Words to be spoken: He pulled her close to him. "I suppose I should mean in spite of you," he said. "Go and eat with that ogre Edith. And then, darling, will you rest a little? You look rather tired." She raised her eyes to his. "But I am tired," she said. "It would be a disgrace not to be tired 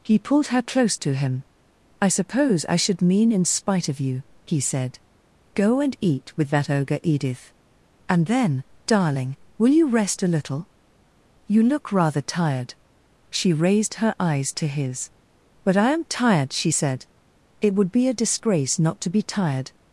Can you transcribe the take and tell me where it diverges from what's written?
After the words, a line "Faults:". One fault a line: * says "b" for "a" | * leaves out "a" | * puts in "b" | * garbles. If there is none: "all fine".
He pulled her close to him. "I suppose I should mean in spite of you," he said. "Go and eat with that ogre Edith. And then, darling, will you rest a little? You look rather tired." She raised her eyes to his. "But I am tired," she said. "It would be a disgrace not to be tired
Faults:
all fine